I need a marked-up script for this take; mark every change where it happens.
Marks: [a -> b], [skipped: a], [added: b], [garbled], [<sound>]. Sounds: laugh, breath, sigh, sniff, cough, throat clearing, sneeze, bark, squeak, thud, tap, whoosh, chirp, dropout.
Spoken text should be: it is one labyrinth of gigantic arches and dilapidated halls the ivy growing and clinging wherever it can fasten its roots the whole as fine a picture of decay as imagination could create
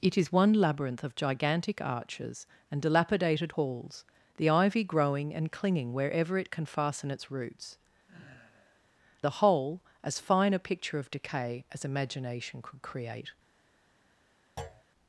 it is one labyrinth of gigantic arches and dilapidated halls the ivy growing and clinging wherever it can fasten its roots [sigh] the whole as fine a picture of decay as imagination could create [thud]